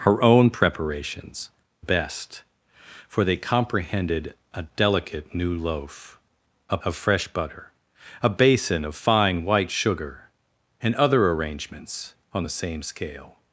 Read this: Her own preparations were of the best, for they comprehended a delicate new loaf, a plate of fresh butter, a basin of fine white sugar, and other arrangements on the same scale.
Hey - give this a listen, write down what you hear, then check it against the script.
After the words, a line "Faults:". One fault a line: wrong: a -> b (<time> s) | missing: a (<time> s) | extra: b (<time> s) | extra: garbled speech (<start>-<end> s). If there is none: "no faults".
Her own preparations best, for they comprehended a delicate new loaf, a of fresh butter, a basin of fine white sugar, and other arrangements on the same scale.
Faults:
missing: were of the (1.5 s)
missing: plate (6.8 s)